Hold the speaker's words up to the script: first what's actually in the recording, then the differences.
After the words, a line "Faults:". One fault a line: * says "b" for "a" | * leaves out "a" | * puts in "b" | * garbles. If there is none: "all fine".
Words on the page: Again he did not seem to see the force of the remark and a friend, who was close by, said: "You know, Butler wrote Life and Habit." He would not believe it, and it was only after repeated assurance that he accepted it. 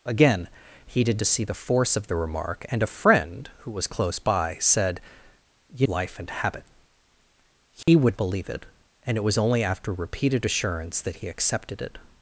Again he did to see the force of the remark and a friend, who was close by, said: "You Life and Habit." He would believe it, and it was only after repeated assurance that he accepted it.
Faults:
* leaves out "not seem"
* leaves out "know Butler wrote"
* leaves out "not"